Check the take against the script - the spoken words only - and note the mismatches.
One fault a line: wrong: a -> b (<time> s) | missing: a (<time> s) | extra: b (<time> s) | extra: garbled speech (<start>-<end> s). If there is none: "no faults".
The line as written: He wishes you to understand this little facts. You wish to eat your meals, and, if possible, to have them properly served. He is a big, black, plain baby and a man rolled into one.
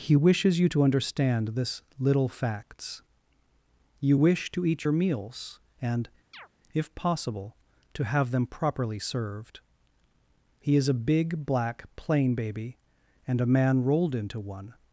no faults